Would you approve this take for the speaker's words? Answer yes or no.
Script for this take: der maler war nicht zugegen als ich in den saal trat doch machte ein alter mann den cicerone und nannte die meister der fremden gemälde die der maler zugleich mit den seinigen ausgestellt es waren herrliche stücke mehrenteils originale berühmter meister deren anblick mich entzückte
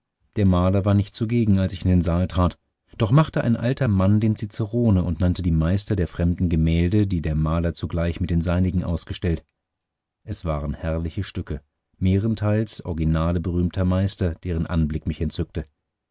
yes